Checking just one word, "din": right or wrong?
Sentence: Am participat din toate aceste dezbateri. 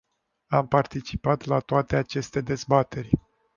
wrong